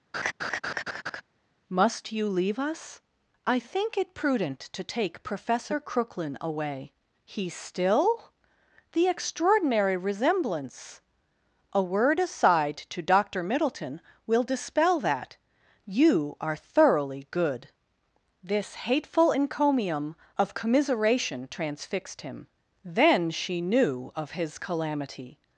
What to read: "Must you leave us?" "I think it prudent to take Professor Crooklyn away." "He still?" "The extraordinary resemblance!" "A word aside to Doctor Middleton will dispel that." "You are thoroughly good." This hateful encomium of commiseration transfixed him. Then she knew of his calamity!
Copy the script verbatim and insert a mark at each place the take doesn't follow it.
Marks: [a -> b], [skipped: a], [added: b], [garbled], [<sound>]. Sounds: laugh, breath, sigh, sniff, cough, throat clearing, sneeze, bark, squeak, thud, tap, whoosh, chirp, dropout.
[laugh] "Must you leave us?" "I think it prudent to take Professor Crooklyn away." "He still?" "The extraordinary resemblance!" "A word aside to Doctor Middleton will dispel that." "You are thoroughly good." This hateful encomium of commiseration transfixed him. Then she knew of his calamity!